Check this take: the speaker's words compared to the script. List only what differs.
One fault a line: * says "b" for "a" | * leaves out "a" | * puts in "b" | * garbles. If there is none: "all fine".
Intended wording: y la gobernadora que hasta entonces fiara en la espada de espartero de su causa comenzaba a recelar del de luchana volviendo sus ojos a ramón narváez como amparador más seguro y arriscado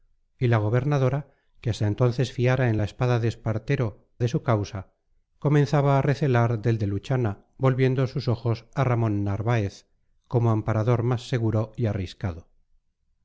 all fine